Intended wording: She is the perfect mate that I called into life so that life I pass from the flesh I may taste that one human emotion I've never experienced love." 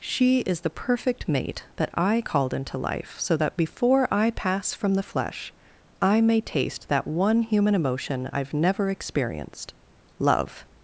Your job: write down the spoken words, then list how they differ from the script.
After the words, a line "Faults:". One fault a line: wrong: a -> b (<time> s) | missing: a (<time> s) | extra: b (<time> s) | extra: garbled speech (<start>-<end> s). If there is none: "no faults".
She is the perfect mate that I called into life so that before I pass from the flesh I may taste that one human emotion I've never experienced love."
Faults:
wrong: life -> before (3.5 s)